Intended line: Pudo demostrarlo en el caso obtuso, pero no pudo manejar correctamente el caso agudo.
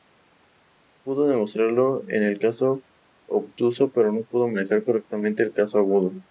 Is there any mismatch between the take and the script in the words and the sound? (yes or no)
no